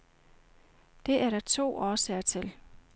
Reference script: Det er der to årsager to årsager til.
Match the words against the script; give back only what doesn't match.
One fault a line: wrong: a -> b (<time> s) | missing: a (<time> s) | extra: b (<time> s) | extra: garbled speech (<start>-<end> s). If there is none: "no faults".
missing: to årsager (2.2 s)